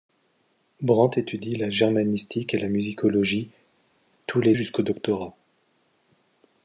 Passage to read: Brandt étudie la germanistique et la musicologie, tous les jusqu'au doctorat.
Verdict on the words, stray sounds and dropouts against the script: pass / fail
pass